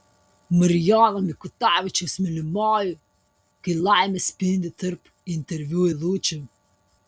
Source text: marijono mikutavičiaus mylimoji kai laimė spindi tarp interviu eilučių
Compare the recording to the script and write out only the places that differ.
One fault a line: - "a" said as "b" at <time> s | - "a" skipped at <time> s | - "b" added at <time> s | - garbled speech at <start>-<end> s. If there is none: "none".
none